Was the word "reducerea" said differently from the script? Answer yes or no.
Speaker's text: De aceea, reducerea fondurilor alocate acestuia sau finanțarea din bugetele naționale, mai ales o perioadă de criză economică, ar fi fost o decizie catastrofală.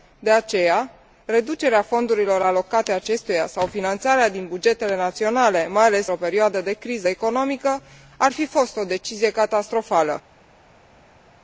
no